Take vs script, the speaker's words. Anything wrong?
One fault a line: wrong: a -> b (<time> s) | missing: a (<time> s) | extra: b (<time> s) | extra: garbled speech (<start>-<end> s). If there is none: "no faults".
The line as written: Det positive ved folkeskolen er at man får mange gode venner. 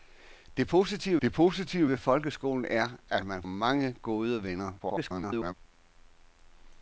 extra: det positive (1.2 s)
missing: får (3.4 s)
extra: garbled speech (4.8-5.5 s)